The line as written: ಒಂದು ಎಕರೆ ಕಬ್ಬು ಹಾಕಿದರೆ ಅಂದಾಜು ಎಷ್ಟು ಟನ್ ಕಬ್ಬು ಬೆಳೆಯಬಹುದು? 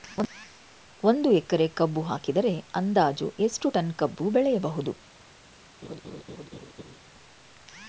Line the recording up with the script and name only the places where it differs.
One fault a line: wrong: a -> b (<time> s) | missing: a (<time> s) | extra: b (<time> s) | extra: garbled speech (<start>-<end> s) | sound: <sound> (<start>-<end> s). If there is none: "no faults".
sound: laugh (5.8-7.0 s)